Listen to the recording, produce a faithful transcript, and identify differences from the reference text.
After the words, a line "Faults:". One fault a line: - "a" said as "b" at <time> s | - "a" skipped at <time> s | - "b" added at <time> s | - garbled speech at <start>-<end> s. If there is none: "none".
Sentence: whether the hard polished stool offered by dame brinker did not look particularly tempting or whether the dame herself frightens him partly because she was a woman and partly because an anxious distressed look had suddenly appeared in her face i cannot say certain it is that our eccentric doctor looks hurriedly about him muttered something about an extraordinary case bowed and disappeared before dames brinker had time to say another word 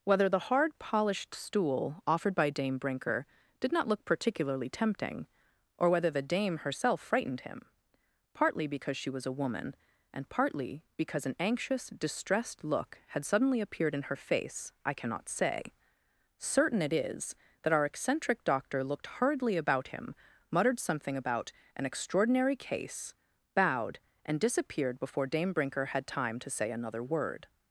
whether the hard polished stool offered by dame brinker did not look particularly tempting or whether the dame herself frightened him partly because she was a woman and partly because an anxious distressed look had suddenly appeared in her face i cannot say certain it is that our eccentric doctor looked hurriedly about him muttered something about an extraordinary case bowed and disappeared before dame brinker had time to say another word
Faults:
- "frightens" said as "frightened" at 7.0 s
- "looks" said as "looked" at 18.8 s
- "dames" said as "dame" at 25.3 s